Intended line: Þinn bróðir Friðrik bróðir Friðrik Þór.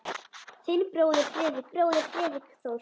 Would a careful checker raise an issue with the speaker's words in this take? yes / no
no